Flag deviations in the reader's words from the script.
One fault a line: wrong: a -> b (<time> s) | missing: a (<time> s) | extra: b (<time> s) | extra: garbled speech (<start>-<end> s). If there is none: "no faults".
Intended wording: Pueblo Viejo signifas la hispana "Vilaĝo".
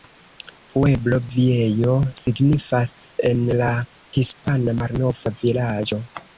extra: en (3.3 s)
extra: Malnova (4.8 s)